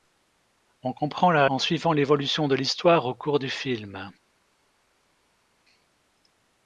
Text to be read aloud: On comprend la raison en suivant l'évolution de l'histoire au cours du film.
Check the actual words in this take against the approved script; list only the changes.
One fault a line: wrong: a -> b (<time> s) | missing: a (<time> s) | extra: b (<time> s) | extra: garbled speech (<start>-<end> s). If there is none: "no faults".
missing: raison (1.4 s)